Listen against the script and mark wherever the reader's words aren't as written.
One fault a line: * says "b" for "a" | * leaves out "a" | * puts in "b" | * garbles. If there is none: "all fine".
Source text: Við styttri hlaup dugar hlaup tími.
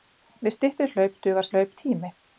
all fine